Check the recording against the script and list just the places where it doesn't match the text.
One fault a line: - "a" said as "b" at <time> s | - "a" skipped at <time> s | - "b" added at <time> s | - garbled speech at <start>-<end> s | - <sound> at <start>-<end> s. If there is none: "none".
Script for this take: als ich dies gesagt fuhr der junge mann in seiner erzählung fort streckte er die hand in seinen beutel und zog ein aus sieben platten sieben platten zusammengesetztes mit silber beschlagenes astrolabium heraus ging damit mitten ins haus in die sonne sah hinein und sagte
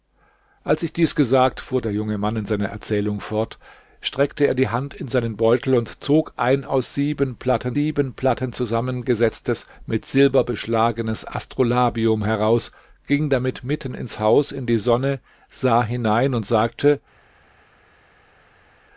none